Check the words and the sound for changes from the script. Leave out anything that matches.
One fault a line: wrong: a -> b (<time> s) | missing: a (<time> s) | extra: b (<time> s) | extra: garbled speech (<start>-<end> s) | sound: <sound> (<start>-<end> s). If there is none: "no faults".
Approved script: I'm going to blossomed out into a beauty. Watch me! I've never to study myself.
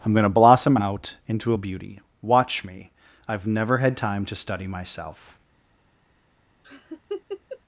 wrong: blossomed -> blossom (0.3 s)
extra: had time (3.8 s)
sound: laugh (6.6-7.6 s)